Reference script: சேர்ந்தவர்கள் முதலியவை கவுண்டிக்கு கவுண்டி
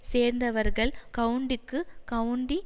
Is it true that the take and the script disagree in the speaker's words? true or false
true